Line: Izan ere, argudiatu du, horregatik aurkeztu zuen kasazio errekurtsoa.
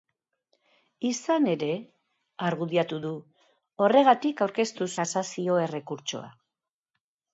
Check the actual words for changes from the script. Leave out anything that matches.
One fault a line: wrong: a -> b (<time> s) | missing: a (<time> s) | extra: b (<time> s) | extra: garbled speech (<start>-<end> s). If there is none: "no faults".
missing: zuen (4.9 s)